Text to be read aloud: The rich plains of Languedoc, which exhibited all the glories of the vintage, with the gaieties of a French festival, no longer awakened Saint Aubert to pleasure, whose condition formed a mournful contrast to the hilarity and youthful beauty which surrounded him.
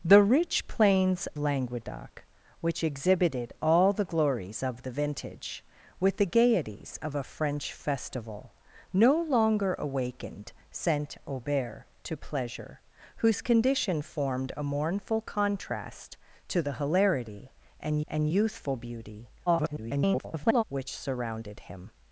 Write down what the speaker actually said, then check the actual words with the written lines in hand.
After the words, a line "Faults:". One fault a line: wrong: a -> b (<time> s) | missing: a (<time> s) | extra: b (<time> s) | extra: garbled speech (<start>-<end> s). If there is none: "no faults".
The rich plains Languedoc, which exhibited all the glories of the vintage, with the gaieties of a French festival, no longer awakened Saint Aubert to pleasure, whose condition formed a mournful contrast to the hilarity and and youthful beauty [garbled] which surrounded him.
Faults:
missing: of (1.3 s)
extra: and (18.1 s)
extra: garbled speech (19.5-20.6 s)